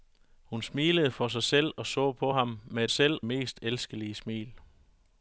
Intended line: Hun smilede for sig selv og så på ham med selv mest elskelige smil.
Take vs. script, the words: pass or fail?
pass